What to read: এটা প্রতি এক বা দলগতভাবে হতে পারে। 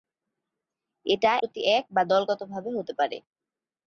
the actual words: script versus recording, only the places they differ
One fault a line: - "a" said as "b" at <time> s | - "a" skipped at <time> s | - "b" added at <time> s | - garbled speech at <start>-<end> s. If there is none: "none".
none